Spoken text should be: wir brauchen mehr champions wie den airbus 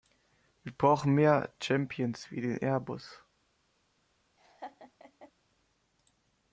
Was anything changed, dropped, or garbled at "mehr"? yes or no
no